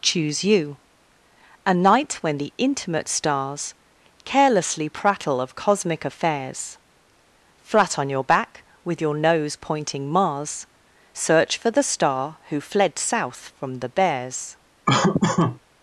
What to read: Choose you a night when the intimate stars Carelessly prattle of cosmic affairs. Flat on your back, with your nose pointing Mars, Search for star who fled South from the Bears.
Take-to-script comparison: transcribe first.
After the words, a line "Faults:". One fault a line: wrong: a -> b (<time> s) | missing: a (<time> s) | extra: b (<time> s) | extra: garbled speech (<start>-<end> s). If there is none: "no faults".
Choose you a night when the intimate stars Carelessly prattle of cosmic affairs. Flat on your back, with your nose pointing Mars, Search for the star who fled South from the Bears.
Faults:
extra: the (11.7 s)